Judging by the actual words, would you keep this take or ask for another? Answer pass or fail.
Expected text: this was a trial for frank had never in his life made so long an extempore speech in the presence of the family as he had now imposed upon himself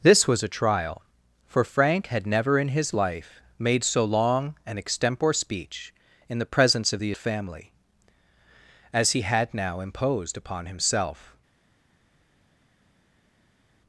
pass